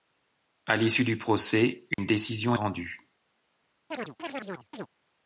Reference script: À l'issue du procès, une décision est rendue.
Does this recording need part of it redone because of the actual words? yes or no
yes